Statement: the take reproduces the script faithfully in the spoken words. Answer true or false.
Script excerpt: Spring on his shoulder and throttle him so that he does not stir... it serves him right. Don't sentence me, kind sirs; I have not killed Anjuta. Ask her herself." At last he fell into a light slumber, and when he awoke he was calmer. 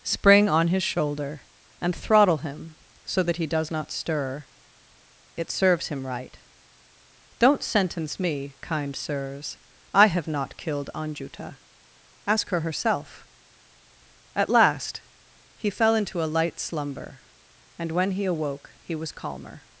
true